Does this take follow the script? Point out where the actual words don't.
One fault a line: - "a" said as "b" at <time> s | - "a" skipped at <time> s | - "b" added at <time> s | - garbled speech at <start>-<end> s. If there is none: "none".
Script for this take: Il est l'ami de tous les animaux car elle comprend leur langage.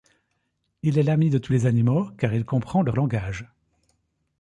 - "elle" said as "il" at 2.3 s